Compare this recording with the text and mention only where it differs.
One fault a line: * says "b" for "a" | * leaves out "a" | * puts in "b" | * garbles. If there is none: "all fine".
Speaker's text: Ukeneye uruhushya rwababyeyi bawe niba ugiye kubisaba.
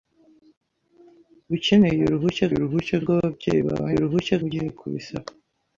* puts in "uruhushya"
* says "uruhushya" for "niba"